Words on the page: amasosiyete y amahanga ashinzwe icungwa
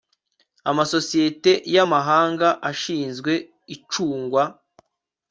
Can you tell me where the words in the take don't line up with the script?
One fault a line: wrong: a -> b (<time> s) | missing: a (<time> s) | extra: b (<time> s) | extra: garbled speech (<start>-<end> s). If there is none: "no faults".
no faults